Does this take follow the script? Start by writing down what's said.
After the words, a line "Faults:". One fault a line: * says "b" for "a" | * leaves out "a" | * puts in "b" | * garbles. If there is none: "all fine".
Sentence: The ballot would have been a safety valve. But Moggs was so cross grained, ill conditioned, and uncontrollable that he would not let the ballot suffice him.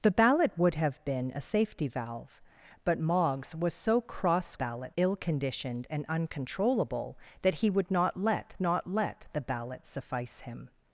The ballot would have been a safety valve. But Moggs was so cross ballot, ill conditioned, and uncontrollable that he would not let not let the ballot suffice him.
Faults:
* says "ballot" for "grained"
* puts in "not let"